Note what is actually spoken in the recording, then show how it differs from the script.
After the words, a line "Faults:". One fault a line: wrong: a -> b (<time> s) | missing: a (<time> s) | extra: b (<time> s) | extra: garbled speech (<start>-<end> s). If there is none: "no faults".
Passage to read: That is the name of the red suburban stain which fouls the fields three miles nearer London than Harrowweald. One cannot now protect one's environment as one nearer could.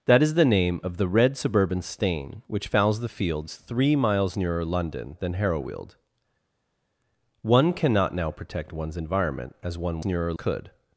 That is the name of the red suburban stain which fouls the fields three miles nearer London than Harrowweald. One cannot now protect one's environment as one nearer could.
Faults:
no faults